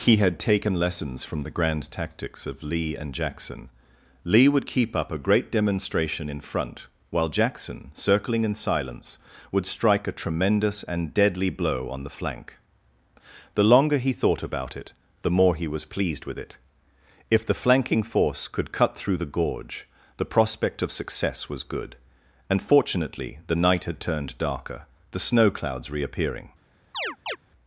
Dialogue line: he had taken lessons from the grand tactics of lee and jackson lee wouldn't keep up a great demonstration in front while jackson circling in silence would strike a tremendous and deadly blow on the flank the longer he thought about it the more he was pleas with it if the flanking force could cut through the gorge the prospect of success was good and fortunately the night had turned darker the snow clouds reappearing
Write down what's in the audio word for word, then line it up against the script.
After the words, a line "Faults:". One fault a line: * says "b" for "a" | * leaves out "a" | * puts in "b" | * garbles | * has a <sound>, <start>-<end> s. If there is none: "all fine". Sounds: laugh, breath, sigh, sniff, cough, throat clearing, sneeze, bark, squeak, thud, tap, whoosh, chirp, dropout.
he had taken lessons from the grand tactics of lee and jackson lee would keep up a great demonstration in front while jackson circling in silence would strike a tremendous and deadly blow on the flank the longer he thought about it the more he was pleased with it if the flanking force could cut through the gorge the prospect of success was good and fortunately the night had turned darker the snow clouds reappearing
Faults:
* says "would" for "wouldn't"
* says "pleased" for "pleas"
* has a chirp, 26.9-27.4 s